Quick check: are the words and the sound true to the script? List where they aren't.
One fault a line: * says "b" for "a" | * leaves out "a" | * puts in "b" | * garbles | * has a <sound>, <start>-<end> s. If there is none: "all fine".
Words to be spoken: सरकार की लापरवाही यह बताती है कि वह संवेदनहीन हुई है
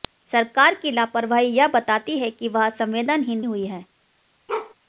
* has a bark, 4.5-4.7 s